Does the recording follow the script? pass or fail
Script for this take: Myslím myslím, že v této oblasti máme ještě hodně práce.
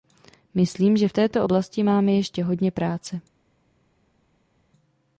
fail